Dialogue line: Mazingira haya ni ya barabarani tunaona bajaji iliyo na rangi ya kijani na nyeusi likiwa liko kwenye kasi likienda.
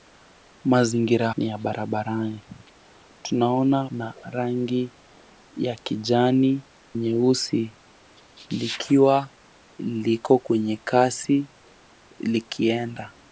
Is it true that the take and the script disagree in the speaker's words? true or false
true